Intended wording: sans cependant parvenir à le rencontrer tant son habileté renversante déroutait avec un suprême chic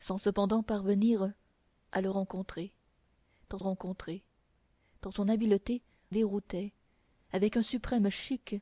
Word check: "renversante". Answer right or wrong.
wrong